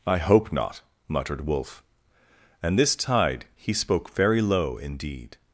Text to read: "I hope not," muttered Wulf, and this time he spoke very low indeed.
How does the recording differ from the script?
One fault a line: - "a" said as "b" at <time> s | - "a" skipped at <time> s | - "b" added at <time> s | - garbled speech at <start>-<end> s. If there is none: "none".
- "time" said as "tide" at 3.0 s